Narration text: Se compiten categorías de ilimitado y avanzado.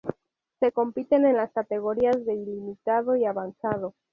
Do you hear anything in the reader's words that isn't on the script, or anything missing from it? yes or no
yes